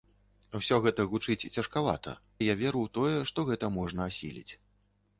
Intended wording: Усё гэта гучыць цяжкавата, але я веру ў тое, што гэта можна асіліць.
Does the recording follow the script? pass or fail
fail